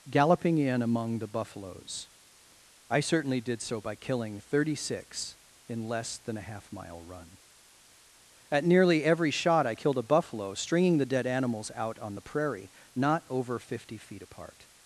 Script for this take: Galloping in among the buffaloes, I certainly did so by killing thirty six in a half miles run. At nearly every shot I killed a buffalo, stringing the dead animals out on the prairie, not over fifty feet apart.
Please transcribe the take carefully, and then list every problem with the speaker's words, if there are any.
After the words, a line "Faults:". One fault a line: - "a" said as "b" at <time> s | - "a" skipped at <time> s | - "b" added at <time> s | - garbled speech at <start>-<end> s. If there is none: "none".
Galloping in among the buffaloes, I certainly did so by killing thirty six in less than a half mile run. At nearly every shot I killed a buffalo, stringing the dead animals out on the prairie, not over fifty feet apart.
Faults:
- "less than" added at 5.9 s
- "miles" said as "mile" at 6.7 s